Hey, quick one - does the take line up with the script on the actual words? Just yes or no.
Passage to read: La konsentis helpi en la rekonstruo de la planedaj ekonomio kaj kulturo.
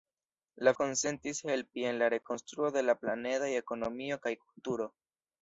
yes